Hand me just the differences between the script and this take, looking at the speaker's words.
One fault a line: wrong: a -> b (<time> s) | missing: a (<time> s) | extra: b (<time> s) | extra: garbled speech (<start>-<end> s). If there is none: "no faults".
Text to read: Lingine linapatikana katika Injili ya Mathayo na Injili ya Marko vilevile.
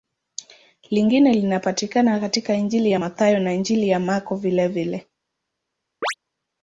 no faults